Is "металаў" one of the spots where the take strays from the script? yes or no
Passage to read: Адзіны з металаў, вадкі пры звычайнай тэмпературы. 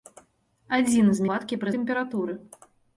yes